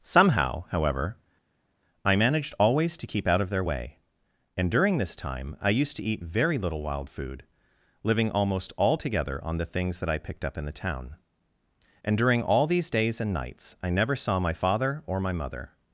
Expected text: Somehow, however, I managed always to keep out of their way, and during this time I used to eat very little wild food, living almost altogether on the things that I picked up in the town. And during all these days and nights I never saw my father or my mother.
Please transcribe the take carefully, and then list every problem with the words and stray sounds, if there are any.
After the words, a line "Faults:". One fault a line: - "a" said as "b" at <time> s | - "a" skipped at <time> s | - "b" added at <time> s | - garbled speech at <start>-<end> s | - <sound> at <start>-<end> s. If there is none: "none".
Somehow, however, I managed always to keep out of their way, and during this time I used to eat very little wild food, living almost altogether on the things that I picked up in the town. And during all these days and nights I never saw my father or my mother.
Faults:
none